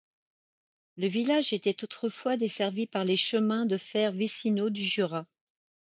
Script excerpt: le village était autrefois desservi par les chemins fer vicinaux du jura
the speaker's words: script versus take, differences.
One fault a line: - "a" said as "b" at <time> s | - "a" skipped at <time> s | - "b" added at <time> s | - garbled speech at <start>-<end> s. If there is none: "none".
- "de" added at 3.7 s